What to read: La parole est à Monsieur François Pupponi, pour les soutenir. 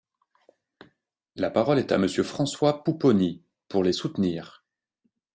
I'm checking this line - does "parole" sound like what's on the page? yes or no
yes